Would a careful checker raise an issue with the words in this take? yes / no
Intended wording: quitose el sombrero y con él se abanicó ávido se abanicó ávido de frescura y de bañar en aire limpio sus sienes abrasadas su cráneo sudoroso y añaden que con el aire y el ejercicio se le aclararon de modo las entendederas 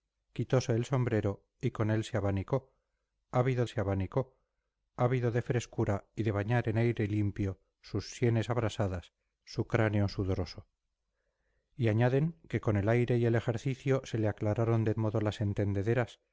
no